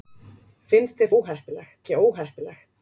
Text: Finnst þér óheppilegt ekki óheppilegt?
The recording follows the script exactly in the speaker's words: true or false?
true